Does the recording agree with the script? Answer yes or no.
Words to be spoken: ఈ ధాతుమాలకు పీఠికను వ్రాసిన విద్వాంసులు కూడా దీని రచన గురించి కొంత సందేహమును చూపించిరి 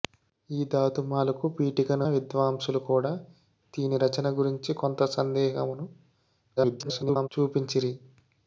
no